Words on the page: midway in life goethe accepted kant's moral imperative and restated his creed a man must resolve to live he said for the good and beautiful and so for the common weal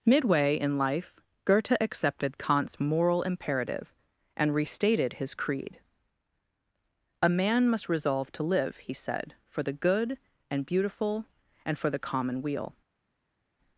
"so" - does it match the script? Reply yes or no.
no